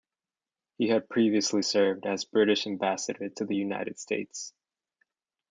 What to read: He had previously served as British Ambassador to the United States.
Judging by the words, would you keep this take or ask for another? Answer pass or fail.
pass